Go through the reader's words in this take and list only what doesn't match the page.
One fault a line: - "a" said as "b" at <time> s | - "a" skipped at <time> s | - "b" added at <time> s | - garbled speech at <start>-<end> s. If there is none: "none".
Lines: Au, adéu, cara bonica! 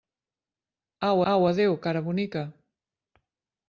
- "au" added at 1.3 s